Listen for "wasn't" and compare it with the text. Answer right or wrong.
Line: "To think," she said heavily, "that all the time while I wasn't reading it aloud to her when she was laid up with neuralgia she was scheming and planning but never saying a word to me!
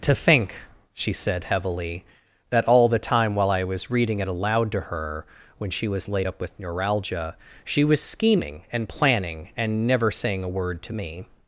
wrong